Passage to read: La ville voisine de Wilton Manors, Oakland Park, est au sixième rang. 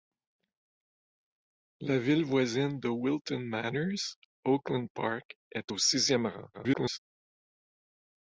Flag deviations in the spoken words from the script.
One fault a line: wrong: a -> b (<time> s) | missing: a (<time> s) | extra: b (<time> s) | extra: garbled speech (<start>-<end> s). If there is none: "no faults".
extra: garbled speech (6.5-7.0 s)